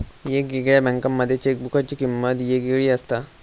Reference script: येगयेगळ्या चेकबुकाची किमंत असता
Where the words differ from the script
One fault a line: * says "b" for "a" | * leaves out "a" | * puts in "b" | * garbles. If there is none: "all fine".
* puts in "बँकांमध्ये"
* puts in "येगयेगळी"